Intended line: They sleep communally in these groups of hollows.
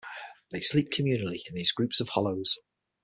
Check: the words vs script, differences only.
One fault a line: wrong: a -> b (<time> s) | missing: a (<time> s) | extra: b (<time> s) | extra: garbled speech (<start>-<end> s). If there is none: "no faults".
no faults